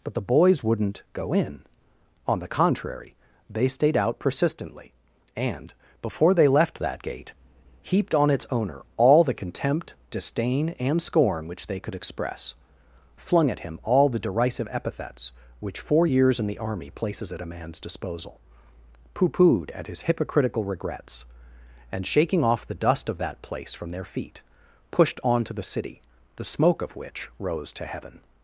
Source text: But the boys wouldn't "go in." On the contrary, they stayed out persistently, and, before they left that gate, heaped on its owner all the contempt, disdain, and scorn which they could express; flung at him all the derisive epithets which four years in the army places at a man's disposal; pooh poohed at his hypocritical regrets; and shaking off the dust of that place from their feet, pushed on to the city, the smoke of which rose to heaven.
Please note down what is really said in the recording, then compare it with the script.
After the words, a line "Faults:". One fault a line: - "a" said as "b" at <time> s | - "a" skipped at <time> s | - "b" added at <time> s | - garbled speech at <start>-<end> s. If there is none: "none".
But the boys wouldn't "go in." On the contrary, they stayed out persistently, and, before they left that gate, heaped on its owner all the contempt, disdain, and scorn which they could express; flung at him all the derisive epithets which four years in the army places at a man's disposal; pooh poohed at his hypocritical regrets; and shaking off the dust of that place from their feet, pushed on to the city, the smoke of which rose to heaven.
Faults:
none